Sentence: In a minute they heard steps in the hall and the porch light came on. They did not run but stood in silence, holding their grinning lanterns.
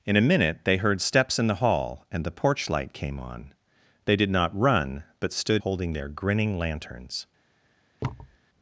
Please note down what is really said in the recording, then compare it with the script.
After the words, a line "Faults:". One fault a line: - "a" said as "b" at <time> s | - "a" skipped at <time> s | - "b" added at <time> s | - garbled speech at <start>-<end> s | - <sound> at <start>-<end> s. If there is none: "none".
In a minute they heard steps in the hall and the porch light came on. They did not run but stood holding their grinning lanterns.
Faults:
- "in silence" skipped at 5.6 s
- thud at 8.0-8.4 s